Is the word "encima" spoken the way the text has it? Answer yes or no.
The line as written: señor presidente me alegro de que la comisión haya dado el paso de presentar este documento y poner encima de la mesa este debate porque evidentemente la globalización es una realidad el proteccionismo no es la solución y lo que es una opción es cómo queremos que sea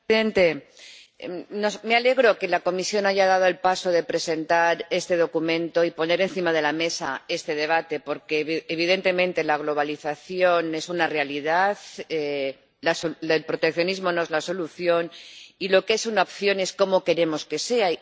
yes